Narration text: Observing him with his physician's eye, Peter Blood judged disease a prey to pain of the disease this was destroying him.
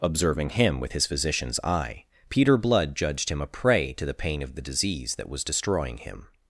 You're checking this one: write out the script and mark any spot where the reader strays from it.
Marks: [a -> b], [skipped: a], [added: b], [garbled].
Observing him with his physician's eye, Peter Blood judged [disease -> him] a prey to [added: the] pain of the disease [this -> that] was destroying him.